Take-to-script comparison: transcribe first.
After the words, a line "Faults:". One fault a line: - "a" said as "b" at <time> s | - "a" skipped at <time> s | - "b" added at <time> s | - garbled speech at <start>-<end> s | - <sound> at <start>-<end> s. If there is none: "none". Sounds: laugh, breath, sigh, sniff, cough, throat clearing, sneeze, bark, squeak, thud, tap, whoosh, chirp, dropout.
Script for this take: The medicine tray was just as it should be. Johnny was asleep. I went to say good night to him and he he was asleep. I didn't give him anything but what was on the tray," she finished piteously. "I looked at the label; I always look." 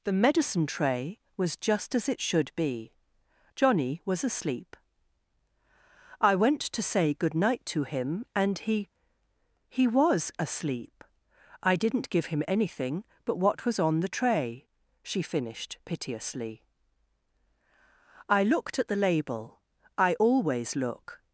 The medicine tray was just as it should be. Johnny was asleep. I went to say good night to him and he he was asleep. I didn't give him anything but what was on the tray," she finished piteously. "I looked at the label; I always look."
Faults:
none